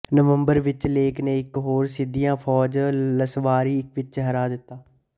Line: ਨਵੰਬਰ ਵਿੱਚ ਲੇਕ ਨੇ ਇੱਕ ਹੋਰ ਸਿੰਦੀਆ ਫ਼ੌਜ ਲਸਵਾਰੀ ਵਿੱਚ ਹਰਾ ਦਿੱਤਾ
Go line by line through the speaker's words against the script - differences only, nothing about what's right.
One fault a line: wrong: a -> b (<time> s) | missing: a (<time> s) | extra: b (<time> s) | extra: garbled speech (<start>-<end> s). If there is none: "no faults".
no faults